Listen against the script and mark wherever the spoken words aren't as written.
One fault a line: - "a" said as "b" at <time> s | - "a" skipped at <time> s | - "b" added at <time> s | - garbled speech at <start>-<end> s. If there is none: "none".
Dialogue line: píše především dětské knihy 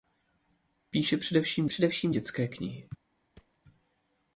- "především" added at 1.7 s